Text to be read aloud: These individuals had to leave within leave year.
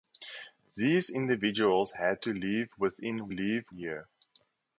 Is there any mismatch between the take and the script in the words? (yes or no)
no